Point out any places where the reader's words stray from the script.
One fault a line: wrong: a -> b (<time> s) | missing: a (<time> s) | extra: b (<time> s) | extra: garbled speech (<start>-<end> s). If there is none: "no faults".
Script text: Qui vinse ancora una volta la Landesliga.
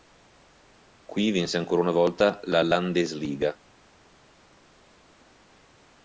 no faults